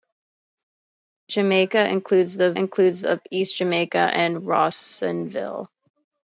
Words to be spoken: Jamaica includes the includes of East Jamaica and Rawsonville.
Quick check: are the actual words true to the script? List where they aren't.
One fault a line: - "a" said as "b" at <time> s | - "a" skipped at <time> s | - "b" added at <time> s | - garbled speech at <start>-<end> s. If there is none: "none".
none